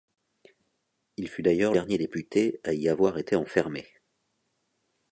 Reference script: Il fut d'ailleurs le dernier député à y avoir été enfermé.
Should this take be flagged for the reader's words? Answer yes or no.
yes